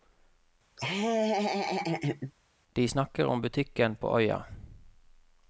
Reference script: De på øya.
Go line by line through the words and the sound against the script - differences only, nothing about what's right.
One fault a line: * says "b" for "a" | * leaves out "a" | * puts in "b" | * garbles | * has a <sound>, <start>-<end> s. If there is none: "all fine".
* has a laugh, 0.8-2.3 s
* puts in "snakker om butikken"